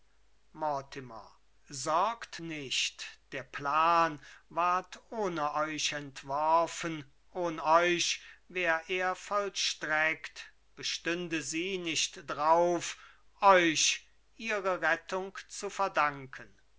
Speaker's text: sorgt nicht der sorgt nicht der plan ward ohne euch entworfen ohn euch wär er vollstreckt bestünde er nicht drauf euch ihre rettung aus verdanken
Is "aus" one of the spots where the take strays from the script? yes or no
yes